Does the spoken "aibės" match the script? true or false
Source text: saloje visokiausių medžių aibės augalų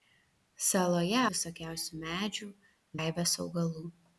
true